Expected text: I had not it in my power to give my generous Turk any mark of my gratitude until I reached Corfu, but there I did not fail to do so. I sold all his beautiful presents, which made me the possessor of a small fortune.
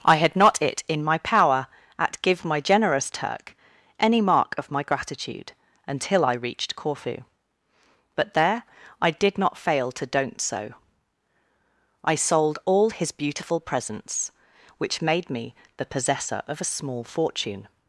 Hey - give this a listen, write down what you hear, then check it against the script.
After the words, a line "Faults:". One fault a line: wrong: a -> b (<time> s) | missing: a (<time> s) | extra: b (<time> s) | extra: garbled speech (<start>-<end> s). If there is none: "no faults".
I had not it in my power at give my generous Turk any mark of my gratitude until I reached Corfu, but there I did not fail to don't so. I sold all his beautiful presents, which made me the possessor of a small fortune.
Faults:
wrong: to -> at (2.0 s)
wrong: do -> don't (10.1 s)